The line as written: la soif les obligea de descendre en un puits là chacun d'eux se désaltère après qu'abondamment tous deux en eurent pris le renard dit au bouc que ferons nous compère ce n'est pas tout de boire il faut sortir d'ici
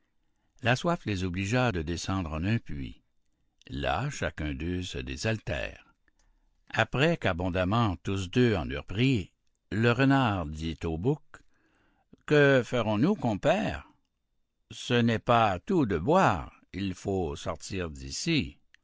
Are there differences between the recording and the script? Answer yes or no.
no